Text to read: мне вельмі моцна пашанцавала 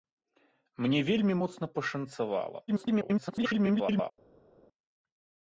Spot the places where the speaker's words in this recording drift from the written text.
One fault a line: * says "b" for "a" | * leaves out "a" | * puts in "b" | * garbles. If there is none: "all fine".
* garbles